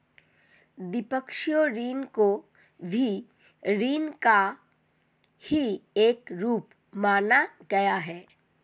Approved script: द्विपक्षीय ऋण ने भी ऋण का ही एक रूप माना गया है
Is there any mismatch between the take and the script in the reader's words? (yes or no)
yes